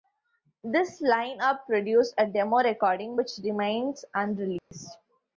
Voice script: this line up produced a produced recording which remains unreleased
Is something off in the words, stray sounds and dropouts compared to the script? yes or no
yes